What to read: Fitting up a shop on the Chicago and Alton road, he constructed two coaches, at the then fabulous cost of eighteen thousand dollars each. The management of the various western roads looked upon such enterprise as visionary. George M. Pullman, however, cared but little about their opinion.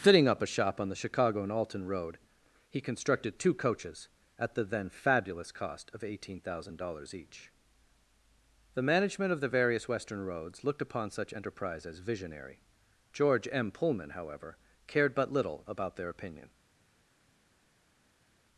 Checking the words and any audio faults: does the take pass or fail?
pass